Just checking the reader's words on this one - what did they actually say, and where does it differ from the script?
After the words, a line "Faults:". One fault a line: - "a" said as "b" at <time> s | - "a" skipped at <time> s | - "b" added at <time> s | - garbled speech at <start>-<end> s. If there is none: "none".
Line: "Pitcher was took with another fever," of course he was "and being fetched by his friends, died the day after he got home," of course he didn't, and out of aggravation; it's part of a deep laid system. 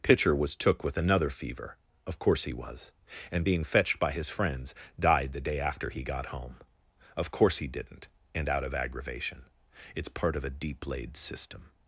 "Pitcher was took with another fever," of course he was "and being fetched by his friends, died the day after he got home," of course he didn't, and out of aggravation; it's part of a deep laid system.
Faults:
none